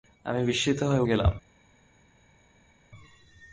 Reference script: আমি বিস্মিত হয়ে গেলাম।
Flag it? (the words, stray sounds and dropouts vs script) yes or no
no